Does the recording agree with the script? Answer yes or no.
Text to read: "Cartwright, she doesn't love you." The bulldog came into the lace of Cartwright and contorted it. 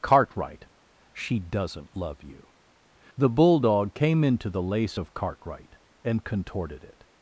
yes